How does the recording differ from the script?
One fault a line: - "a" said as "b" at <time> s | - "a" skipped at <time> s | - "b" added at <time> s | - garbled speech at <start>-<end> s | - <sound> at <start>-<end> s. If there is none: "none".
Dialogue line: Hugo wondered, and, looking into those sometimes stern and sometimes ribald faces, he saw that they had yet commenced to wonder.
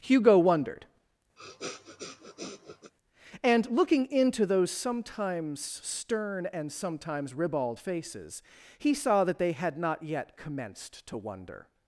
- sniff at 1.4-2.9 s
- "not" added at 9.8 s